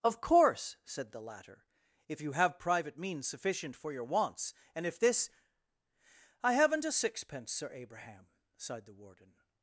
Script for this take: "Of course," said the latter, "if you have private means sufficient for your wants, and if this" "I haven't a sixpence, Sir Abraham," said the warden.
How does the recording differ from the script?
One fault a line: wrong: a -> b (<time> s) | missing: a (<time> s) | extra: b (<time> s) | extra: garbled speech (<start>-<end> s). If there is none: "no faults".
wrong: said -> sighed (8.6 s)